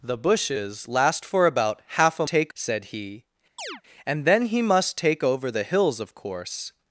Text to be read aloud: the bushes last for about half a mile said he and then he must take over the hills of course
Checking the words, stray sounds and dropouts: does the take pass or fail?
fail